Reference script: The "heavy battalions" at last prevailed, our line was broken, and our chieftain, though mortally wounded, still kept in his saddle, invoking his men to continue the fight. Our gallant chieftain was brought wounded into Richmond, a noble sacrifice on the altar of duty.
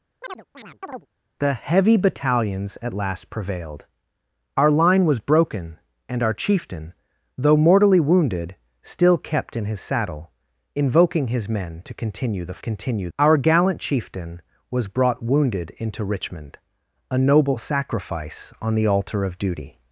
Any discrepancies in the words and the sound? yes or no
yes